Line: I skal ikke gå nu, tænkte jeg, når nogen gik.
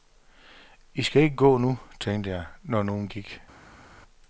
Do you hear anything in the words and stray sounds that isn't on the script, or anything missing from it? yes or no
no